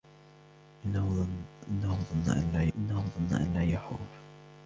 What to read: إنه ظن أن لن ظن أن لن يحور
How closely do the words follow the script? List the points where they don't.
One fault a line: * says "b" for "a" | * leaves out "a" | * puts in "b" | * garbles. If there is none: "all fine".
all fine